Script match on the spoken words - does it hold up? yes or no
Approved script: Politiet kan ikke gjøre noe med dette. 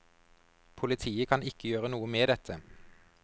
yes